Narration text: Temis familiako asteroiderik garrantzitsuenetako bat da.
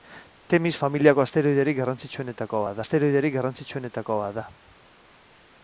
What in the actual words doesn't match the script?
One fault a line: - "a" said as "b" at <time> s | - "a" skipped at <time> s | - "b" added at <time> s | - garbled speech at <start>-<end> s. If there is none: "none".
- "asteroiderik garrantzitsuenetako bat" added at 2.8 s